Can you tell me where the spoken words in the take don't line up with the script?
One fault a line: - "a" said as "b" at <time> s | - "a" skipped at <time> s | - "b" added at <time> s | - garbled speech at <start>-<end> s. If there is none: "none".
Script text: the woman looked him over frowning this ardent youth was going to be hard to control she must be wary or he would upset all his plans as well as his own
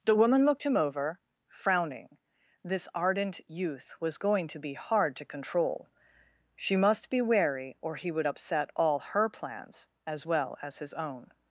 - "his" said as "her" at 9.0 s